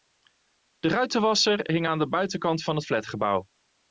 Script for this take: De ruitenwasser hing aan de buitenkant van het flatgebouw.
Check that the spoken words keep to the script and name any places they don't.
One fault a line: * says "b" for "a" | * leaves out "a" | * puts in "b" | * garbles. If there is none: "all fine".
all fine